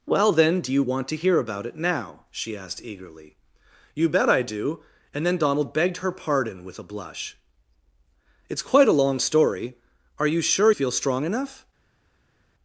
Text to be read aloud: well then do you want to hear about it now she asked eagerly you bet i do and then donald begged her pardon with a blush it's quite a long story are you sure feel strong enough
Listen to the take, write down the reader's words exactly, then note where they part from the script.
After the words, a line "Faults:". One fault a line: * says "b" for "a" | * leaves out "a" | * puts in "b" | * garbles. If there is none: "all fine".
well then do you want to hear about it now she asked eagerly you bet i do and then donald begged her pardon with a blush it's quite a long story are you sure feel strong enough
Faults:
all fine